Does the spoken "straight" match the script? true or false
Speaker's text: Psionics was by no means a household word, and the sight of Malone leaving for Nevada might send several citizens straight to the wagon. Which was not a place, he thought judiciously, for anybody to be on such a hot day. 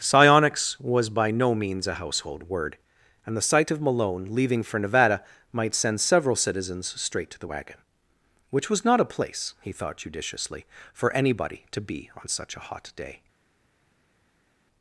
true